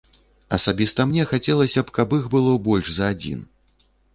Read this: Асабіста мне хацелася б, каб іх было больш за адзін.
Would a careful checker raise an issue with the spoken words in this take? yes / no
no